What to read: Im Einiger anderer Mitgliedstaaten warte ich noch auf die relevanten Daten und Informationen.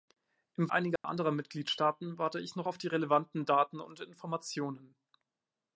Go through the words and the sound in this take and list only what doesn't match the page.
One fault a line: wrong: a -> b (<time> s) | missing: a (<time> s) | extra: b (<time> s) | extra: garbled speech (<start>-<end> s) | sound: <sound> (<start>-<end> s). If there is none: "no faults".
sound: dropout (1.0-1.0 s)